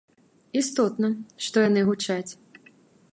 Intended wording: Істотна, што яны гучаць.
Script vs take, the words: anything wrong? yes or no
no